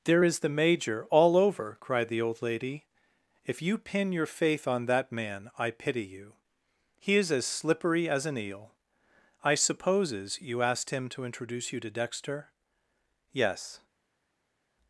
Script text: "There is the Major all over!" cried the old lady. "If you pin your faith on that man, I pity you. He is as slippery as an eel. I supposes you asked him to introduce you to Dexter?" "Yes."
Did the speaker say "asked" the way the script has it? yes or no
yes